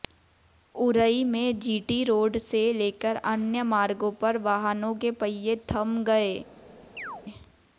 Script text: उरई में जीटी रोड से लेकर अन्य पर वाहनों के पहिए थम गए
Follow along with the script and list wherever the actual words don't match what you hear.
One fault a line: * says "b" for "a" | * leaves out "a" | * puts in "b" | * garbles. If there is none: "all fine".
* puts in "मार्गों"